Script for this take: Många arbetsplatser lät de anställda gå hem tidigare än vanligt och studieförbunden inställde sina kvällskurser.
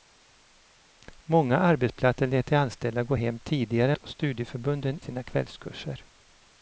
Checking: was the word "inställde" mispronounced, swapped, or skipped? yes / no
yes